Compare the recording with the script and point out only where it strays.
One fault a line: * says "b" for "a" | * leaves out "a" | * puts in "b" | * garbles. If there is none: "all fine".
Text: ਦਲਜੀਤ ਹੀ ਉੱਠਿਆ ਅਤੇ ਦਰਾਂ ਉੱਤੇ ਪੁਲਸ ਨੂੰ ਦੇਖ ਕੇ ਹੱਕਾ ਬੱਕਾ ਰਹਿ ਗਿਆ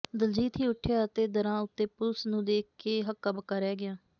all fine